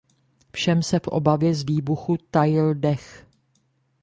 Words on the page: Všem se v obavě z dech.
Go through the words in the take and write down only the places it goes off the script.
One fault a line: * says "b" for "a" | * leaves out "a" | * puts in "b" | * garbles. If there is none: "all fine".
* puts in "výbuchu tajil"